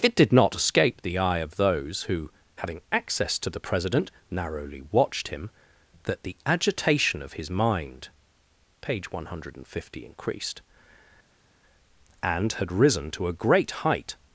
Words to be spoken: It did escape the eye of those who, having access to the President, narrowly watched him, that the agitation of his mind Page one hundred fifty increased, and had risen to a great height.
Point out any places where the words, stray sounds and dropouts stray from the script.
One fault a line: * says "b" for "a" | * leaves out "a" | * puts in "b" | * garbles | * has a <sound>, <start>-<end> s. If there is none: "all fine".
* puts in "not"